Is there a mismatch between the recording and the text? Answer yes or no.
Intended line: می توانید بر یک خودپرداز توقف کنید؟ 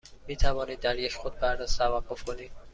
yes